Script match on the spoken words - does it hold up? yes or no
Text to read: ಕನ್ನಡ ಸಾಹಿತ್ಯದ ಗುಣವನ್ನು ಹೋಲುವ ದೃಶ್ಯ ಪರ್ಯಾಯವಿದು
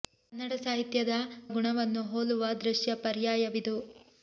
yes